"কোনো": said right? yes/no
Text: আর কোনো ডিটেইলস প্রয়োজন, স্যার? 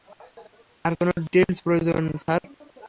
yes